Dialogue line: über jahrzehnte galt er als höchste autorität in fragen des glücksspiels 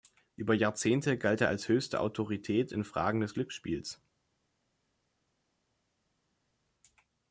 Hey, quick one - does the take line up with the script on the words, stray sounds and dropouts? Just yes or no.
yes